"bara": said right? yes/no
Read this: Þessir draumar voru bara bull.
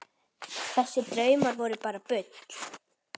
yes